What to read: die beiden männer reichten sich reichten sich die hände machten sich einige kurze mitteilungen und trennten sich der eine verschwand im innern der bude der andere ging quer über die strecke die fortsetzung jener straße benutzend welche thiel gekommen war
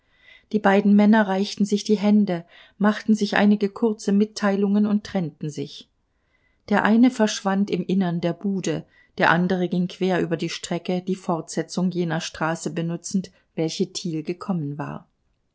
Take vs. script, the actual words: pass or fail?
fail